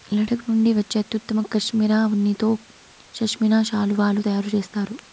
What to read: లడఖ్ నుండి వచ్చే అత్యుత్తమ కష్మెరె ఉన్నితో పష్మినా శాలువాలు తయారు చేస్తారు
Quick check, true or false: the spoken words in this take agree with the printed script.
true